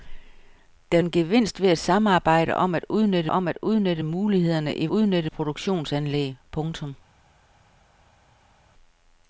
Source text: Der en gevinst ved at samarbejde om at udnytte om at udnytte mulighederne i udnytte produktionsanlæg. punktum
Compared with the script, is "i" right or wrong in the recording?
right